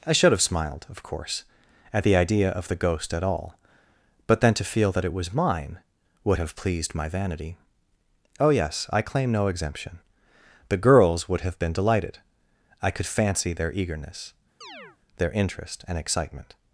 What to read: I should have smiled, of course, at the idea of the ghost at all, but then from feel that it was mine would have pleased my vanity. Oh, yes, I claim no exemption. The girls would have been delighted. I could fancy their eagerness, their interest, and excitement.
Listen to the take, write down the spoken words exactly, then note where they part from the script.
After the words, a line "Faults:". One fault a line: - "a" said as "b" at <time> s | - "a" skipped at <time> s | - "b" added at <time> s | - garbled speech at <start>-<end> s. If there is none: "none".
I should have smiled, of course, at the idea of the ghost at all, but then to feel that it was mine would have pleased my vanity. Oh, yes, I claim no exemption. The girls would have been delighted. I could fancy their eagerness, their interest, and excitement.
Faults:
- "from" said as "to" at 4.5 s